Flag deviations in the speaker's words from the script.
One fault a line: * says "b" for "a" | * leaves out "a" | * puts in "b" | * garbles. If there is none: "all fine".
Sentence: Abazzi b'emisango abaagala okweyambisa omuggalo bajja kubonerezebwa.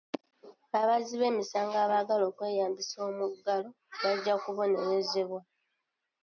all fine